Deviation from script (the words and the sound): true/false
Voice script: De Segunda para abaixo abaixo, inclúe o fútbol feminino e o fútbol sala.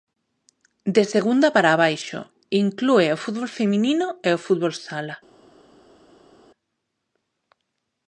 true